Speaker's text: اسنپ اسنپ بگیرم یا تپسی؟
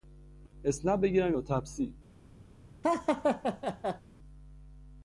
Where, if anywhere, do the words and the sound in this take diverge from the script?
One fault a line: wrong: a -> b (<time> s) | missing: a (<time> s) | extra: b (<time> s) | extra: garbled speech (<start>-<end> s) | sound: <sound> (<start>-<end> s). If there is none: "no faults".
missing: اسنپ (1.0 s)
sound: laugh (2.8-4.0 s)